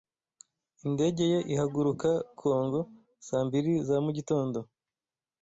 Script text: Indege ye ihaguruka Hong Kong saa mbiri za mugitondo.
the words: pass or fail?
fail